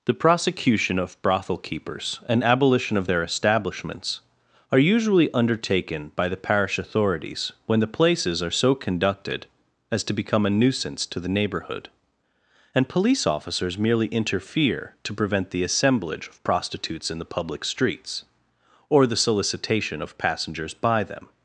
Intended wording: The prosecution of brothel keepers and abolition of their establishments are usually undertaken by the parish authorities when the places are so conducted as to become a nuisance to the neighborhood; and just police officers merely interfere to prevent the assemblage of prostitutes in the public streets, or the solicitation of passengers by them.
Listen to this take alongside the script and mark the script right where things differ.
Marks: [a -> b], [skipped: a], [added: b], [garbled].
The prosecution of brothel keepers and abolition of their establishments are usually undertaken by the parish authorities when the places are so conducted as to become a nuisance to the neighborhood; and [skipped: just] police officers merely interfere to prevent the assemblage of prostitutes in the public streets, or the solicitation of passengers by them.